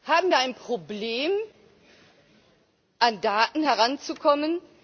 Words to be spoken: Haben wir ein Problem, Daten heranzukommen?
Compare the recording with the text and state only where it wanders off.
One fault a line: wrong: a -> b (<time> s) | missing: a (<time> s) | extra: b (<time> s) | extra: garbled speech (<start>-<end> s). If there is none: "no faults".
extra: an (3.0 s)